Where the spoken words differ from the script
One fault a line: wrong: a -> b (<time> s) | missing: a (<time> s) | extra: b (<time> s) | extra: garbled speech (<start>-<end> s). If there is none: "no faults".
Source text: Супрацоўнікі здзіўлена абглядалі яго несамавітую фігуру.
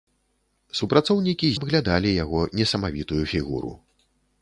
missing: здзіўлена (1.5 s)